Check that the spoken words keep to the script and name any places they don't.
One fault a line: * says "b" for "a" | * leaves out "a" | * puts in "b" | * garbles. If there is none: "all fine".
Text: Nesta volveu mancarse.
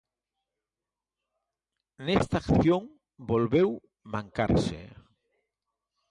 * puts in "acción"